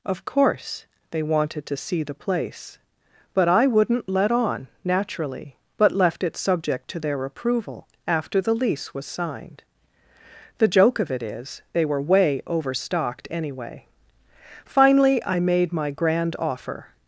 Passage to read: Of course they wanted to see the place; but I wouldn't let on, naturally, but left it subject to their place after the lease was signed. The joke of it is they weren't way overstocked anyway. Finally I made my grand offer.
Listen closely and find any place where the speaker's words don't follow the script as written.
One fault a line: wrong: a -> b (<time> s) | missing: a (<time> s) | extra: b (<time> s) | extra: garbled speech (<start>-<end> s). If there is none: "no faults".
wrong: place -> approval (7.2 s)
wrong: weren't -> were (11.9 s)